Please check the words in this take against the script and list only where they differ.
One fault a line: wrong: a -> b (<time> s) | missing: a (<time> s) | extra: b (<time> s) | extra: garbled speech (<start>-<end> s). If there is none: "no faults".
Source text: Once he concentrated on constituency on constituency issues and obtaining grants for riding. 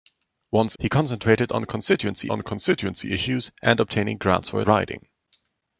no faults